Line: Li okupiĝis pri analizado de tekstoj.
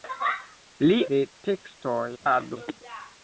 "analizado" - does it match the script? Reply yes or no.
no